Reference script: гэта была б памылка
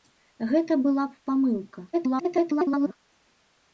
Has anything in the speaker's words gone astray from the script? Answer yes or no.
yes